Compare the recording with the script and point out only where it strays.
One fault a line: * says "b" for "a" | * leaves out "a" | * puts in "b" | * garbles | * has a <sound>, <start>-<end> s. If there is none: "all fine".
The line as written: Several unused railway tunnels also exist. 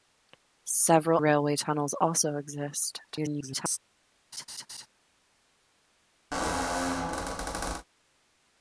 * leaves out "unused"
* garbles
* has a laugh, 4.3-4.9 s
* has a squeak, 6.3-7.8 s